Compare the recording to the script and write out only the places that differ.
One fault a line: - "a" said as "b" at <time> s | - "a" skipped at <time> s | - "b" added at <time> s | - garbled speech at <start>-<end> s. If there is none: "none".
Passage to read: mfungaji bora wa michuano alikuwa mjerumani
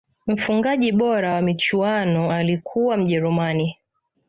none